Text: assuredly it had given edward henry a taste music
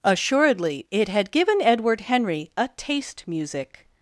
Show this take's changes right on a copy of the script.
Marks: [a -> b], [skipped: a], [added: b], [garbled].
assuredly it had given edward henry a taste music